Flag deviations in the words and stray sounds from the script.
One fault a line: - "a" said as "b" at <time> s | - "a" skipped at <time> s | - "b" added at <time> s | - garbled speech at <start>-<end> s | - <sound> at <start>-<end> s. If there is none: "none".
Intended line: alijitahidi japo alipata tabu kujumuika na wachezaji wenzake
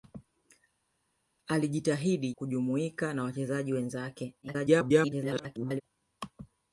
- "japo alipata tabu" skipped at 2.3 s
- garbled speech at 4.4-5.8 s